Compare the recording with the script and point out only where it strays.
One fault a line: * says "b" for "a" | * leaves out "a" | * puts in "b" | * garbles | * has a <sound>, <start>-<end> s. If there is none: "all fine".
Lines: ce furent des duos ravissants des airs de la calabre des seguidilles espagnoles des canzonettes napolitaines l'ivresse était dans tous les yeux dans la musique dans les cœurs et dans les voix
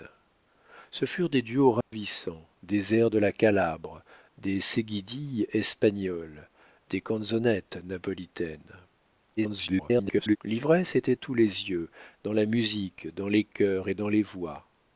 * has a dropout, 1.8-1.9 s
* garbles
* leaves out "dans"